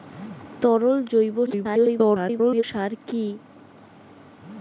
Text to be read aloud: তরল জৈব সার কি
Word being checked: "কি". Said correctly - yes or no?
yes